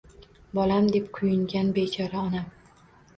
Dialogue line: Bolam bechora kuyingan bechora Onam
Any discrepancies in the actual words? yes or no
yes